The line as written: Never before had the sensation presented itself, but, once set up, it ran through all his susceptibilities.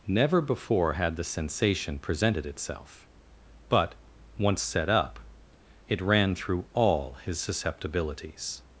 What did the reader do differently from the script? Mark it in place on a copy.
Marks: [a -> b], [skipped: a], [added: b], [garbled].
Never before had the sensation presented itself, but, once set up, it ran through all his susceptibilities.